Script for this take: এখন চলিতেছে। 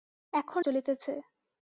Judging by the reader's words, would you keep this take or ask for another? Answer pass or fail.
pass